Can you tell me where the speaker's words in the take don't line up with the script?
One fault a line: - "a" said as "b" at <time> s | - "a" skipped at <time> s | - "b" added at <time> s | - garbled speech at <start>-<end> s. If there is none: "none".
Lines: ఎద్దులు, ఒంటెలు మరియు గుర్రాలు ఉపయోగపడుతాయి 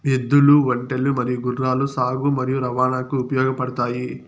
- "సాగు మరియు రవాణాకు" added at 1.9 s